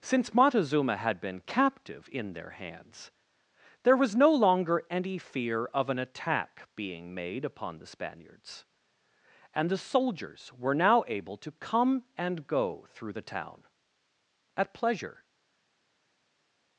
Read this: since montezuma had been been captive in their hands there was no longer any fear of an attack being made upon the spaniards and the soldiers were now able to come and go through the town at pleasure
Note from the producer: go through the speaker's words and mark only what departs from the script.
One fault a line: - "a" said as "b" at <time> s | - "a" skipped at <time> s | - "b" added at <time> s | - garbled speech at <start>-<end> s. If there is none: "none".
- "been" skipped at 1.4 s